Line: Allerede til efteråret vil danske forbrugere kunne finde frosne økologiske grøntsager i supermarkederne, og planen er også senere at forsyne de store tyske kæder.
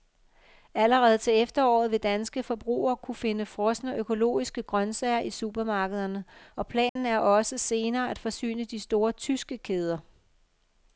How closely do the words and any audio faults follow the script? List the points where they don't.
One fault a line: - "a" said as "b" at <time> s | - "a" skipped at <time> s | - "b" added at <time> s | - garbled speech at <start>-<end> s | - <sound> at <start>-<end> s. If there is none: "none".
- dropout at 6.9-7.0 s